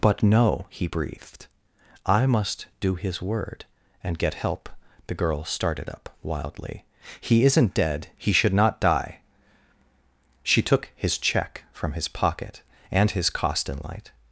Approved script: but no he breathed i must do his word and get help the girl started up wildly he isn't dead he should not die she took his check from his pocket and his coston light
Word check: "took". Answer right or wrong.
right